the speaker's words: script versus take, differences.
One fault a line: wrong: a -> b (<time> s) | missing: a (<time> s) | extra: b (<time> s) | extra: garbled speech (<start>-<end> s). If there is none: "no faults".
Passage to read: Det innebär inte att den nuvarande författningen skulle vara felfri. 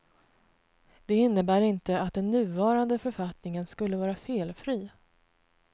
no faults